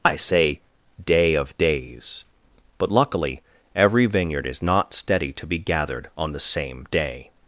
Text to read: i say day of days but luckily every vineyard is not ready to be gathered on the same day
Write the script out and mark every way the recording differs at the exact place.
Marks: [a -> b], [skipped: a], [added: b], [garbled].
i say day of days but luckily every vineyard is not [ready -> steady] to be gathered on the same day